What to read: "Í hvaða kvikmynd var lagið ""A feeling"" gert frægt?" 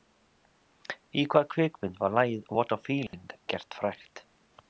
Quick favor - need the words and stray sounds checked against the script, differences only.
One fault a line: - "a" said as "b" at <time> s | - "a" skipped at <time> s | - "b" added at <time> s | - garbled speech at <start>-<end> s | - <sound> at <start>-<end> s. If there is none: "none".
- "What" added at 2.6 s
- dropout at 3.1-3.1 s